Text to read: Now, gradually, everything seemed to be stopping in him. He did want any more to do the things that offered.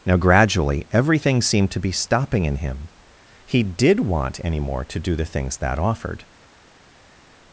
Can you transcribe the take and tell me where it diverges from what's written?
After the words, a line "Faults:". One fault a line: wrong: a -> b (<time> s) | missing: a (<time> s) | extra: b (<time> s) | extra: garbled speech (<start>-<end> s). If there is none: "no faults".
Now, gradually, everything seemed to be stopping in him. He did want any more to do the things that offered.
Faults:
no faults